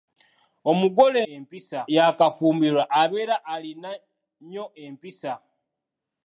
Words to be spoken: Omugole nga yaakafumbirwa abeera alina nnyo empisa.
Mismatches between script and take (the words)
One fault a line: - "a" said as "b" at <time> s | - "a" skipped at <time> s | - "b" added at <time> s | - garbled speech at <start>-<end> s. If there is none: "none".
- "nga" said as "empisa" at 1.3 s